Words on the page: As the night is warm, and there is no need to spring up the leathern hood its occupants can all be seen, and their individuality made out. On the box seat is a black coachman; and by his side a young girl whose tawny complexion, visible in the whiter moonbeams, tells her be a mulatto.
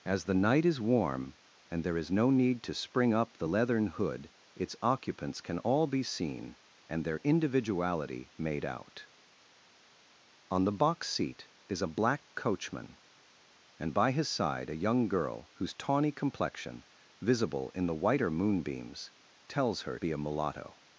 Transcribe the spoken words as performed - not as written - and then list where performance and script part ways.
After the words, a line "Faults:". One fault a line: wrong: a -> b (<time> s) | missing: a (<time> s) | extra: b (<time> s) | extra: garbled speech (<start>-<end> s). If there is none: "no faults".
As the night is warm, and there is no need to spring up the leathern hood its occupants can all be seen, and their individuality made out. On the box seat is a black coachman; and by his side a young girl whose tawny complexion, visible in the whiter moonbeams, tells her be a mulatto.
Faults:
no faults